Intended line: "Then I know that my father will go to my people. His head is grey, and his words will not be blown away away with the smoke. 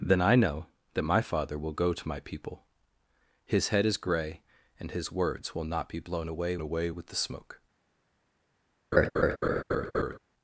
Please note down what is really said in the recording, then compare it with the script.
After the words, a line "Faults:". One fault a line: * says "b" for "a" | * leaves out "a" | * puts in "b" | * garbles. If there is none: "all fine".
"Then I know that my father will go to my people. His head is grey, and his words will not be blown away away with the smoke.
Faults:
all fine